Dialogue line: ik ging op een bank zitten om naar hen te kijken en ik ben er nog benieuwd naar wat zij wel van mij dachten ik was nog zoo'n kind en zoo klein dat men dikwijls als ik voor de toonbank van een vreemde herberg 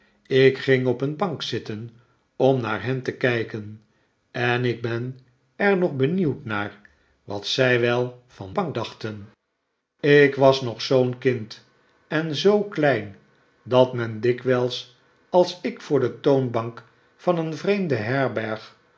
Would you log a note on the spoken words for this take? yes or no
yes